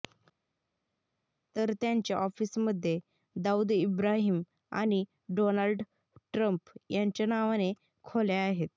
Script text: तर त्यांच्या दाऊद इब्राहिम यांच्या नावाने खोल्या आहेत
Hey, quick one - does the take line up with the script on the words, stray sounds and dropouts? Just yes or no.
no